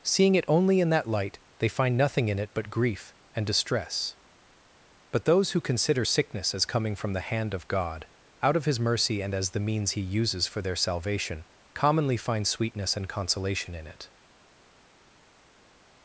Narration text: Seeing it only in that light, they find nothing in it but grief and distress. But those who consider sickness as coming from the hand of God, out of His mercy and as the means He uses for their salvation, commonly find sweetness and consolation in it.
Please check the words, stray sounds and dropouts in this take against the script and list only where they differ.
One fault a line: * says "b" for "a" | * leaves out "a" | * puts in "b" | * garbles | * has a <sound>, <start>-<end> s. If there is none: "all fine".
all fine